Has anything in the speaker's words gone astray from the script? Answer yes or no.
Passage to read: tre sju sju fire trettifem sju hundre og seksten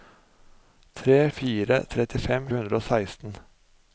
yes